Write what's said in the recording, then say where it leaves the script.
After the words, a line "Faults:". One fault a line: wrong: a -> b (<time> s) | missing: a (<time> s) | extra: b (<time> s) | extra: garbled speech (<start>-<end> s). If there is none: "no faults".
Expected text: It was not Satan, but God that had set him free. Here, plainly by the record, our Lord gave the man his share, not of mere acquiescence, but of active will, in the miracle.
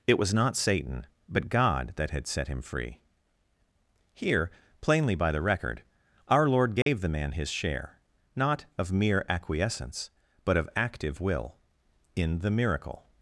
It was not Satan, but God that had set him free. Here, plainly by the record, our Lord gave the man his share, not of mere acquiescence, but of active will, in the miracle.
Faults:
no faults